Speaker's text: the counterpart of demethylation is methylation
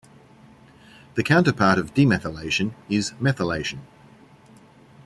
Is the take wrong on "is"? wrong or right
right